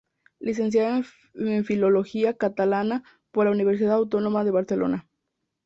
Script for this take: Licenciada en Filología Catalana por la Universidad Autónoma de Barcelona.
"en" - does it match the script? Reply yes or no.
yes